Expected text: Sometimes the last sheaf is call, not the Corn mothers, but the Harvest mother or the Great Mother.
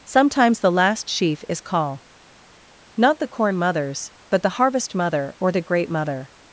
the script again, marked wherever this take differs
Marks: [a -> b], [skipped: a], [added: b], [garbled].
Sometimes the last sheaf is call, not the Corn mothers, but the Harvest mother or the Great Mother.